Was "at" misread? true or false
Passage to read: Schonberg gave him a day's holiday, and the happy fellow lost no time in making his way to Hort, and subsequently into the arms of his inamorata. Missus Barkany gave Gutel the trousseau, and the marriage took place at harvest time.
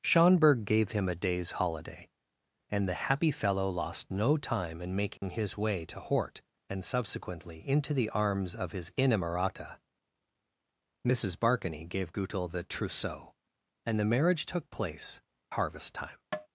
true